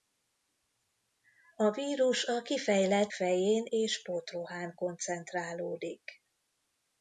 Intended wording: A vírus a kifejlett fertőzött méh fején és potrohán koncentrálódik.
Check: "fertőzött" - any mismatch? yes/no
yes